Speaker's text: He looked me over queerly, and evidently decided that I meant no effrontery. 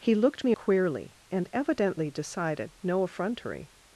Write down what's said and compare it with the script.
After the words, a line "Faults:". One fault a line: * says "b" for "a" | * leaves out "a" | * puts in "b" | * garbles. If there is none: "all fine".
He looked me queerly, and evidently decided no effrontery.
Faults:
* leaves out "over"
* leaves out "that I meant"